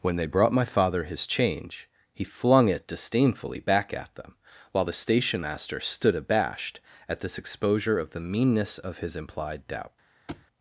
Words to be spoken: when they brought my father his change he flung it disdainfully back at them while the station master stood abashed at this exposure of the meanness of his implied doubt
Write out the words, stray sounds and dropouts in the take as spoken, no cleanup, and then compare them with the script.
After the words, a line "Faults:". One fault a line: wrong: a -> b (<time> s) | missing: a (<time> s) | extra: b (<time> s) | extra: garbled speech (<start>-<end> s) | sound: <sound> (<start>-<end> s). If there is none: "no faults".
when they brought my father his change he flung it disdainfully back at them while the station master stood abashed at this exposure of the meanness of his implied doubt
Faults:
sound: thud (10.3-10.5 s)